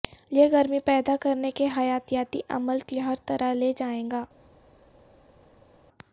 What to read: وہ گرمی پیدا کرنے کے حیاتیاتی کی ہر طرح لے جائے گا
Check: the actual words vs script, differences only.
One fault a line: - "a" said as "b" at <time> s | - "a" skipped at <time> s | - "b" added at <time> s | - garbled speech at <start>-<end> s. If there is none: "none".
- "وہ" said as "یہ" at 0.3 s
- "عمل" added at 2.5 s